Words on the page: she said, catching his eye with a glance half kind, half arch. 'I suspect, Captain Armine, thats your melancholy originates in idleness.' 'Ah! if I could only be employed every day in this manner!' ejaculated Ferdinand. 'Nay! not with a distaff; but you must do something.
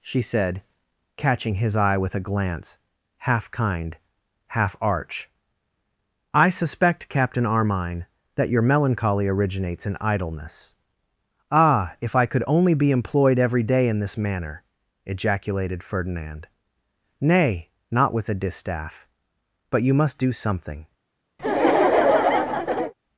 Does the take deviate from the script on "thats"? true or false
true